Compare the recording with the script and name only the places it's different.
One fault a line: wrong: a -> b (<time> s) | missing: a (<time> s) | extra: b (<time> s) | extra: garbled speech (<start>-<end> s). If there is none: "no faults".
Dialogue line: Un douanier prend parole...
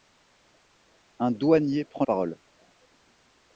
no faults